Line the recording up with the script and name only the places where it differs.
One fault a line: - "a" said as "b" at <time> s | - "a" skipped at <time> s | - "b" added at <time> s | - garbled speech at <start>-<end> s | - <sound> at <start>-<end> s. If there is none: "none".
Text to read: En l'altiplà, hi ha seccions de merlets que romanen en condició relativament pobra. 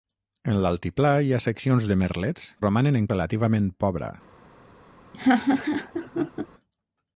- "que" skipped at 2.5 s
- "condició" skipped at 3.1 s
- laugh at 5.1-6.5 s